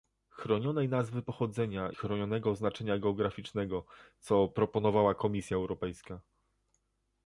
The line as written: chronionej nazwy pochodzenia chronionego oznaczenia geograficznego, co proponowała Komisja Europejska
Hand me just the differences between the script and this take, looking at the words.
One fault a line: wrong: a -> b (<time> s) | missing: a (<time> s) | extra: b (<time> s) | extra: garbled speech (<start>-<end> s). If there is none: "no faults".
no faults